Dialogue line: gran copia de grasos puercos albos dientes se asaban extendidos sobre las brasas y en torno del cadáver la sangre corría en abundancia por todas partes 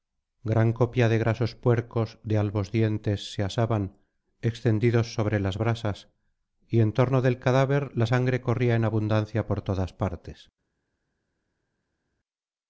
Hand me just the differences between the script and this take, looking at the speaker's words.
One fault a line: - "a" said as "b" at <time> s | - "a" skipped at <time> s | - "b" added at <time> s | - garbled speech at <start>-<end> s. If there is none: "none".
- "de" added at 2.2 s